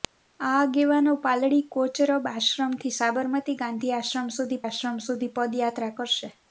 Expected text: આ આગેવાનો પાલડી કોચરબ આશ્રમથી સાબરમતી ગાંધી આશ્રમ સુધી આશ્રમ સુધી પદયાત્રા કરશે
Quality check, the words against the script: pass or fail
pass